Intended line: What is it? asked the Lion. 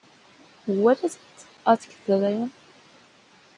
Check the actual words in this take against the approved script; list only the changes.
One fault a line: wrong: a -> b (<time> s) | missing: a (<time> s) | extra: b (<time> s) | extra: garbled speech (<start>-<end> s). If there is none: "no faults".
no faults